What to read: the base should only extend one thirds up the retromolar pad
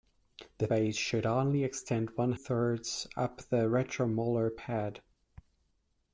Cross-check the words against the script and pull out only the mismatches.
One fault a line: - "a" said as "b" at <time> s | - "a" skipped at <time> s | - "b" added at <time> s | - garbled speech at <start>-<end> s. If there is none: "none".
none